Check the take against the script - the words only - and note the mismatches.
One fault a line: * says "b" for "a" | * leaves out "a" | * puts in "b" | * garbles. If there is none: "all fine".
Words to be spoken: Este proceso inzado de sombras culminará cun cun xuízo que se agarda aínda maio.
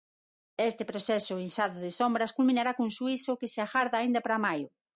* leaves out "cun"
* puts in "para"